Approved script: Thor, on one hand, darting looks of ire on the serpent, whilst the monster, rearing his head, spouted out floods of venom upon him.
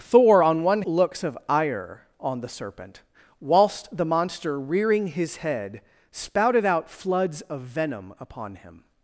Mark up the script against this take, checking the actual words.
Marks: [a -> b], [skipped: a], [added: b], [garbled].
Thor, on one [skipped: hand, darting] looks of ire on the serpent, whilst the monster, rearing his head, spouted out floods of venom upon him.